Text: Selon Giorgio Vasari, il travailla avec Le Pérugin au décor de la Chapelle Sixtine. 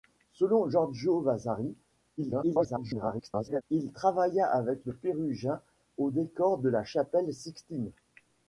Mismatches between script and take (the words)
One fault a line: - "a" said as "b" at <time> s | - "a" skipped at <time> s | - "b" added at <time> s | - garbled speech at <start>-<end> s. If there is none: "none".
- garbled speech at 2.2-3.6 s